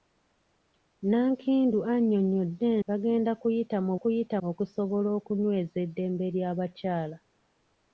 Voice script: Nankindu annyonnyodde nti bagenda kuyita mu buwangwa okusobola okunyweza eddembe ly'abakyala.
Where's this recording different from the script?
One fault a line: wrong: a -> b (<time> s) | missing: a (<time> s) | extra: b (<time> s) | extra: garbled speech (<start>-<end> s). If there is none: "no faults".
missing: nti (2.7 s)
wrong: buwangwa -> kuyita (4.0 s)